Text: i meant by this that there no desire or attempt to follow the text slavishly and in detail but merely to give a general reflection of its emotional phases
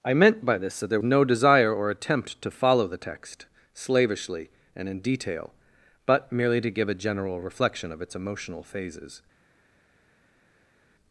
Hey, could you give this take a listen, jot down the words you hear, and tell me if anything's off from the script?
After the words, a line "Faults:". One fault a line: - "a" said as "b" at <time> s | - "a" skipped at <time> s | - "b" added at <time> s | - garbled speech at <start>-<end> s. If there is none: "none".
i meant by this that there no desire or attempt to follow the text slavishly and in detail but merely to give a general reflection of its emotional phases
Faults:
none